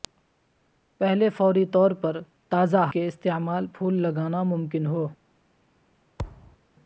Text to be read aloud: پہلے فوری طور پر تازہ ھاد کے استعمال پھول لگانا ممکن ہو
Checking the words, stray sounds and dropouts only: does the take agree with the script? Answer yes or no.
no